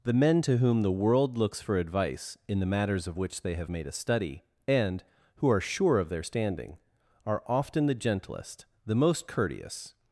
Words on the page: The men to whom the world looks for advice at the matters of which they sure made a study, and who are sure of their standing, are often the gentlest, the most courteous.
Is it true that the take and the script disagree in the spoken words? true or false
true